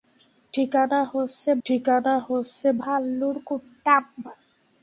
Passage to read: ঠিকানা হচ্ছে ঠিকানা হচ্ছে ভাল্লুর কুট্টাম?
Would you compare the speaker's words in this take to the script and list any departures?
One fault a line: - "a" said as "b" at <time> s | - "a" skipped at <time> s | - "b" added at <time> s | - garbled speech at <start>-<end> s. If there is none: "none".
none